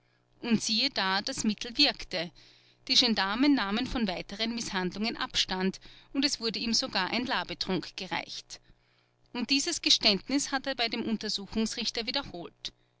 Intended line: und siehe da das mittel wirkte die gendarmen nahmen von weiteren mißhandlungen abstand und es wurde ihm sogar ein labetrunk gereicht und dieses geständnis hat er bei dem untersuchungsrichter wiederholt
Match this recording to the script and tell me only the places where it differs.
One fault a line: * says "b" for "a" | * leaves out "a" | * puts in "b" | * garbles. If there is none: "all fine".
all fine